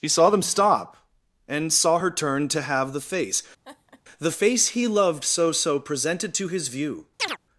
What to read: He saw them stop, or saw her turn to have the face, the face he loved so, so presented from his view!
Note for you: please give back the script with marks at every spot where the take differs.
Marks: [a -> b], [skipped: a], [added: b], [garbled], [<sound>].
He saw them stop, [or -> and] saw her turn to have the face, [laugh] the face he loved so, so presented [from -> to] his view! [chirp]